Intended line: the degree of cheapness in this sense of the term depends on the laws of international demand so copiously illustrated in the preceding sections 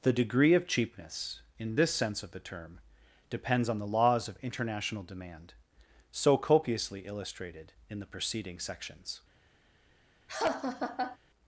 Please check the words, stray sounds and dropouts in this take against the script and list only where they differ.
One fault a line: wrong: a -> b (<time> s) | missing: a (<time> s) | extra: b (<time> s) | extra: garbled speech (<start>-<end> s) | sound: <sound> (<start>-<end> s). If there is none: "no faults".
sound: laugh (10.3-11.2 s)